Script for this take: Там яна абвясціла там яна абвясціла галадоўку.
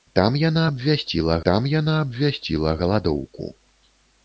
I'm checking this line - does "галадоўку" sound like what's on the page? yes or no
yes